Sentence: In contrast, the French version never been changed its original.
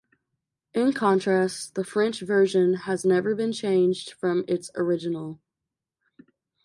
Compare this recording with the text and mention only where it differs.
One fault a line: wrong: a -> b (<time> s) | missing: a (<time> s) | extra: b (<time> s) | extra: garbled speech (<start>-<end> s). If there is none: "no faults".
extra: has (2.7 s)
extra: from (4.1 s)